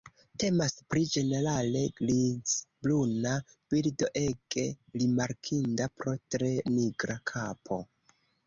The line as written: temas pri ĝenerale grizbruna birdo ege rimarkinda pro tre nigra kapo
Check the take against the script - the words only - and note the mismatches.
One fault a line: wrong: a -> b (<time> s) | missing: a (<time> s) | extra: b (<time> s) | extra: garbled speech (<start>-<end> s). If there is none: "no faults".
no faults